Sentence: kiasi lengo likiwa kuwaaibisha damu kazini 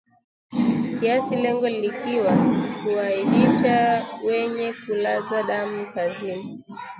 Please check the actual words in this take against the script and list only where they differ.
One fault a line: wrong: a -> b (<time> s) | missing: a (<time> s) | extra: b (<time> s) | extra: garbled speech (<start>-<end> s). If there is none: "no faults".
extra: wenye kulaza (4.2 s)